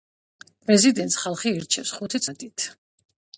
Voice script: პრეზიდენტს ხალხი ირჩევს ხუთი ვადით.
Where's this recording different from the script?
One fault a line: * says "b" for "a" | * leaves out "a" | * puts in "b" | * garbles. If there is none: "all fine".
all fine